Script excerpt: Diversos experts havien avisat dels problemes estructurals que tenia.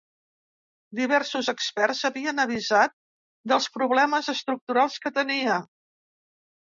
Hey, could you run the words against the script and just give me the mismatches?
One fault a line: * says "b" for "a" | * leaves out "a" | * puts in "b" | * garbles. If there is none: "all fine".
all fine